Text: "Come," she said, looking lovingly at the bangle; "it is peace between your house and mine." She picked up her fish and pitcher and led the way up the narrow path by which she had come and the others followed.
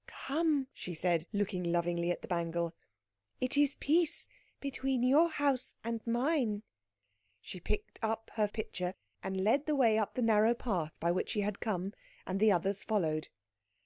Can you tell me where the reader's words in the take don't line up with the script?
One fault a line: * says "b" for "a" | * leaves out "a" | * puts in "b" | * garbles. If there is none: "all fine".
* leaves out "fish and"